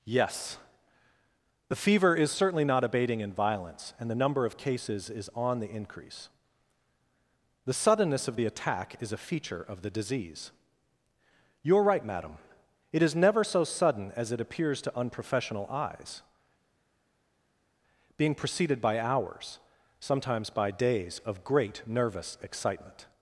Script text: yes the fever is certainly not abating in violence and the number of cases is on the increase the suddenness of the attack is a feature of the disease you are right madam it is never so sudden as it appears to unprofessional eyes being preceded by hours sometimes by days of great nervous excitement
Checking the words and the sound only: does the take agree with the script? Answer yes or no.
yes